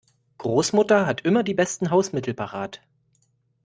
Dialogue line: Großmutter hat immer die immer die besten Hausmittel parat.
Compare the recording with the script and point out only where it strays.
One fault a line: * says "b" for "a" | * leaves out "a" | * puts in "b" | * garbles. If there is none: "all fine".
* leaves out "immer die"